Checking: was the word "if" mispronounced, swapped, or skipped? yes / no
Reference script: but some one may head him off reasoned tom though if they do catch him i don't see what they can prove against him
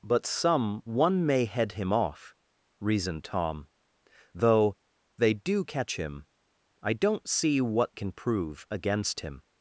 yes